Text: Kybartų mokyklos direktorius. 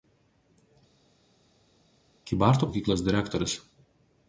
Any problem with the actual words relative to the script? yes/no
no